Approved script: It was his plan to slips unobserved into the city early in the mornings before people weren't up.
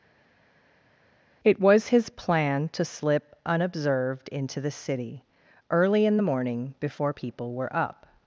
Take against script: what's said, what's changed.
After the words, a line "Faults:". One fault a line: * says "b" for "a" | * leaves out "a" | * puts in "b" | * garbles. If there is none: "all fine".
It was his plan to slip unobserved into the city early in the morning before people were up.
Faults:
* says "slip" for "slips"
* says "morning" for "mornings"
* says "were" for "weren't"